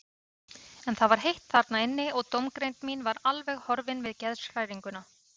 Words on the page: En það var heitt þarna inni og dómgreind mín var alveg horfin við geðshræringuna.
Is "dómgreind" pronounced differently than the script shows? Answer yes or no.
no